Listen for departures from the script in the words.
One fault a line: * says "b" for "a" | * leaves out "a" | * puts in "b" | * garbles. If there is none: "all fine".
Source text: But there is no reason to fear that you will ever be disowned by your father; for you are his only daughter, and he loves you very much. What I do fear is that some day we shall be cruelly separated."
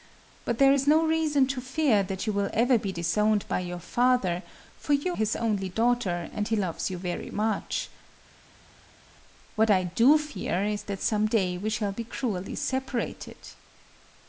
* leaves out "are"